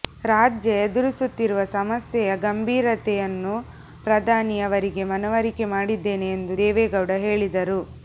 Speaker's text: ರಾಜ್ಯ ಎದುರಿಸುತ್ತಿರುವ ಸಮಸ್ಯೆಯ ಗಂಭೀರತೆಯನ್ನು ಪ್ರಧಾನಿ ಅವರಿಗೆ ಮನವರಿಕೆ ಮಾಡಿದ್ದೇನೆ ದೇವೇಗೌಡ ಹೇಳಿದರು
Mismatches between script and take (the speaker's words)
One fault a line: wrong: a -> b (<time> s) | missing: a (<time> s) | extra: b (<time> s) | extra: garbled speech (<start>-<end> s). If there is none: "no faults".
extra: ಎಂದು (6.4 s)